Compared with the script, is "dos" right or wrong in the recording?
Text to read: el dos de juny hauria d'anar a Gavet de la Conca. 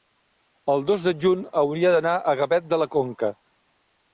right